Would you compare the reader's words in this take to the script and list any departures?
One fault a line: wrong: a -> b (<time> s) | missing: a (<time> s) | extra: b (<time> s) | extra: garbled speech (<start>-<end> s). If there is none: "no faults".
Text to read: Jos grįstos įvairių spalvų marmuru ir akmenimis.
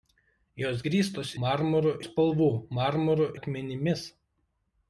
wrong: įvairių -> marmuru (1.5 s)
missing: ir (3.3 s)